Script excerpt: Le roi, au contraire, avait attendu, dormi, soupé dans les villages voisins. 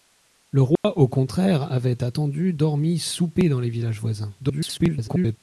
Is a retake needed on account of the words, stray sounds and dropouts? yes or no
yes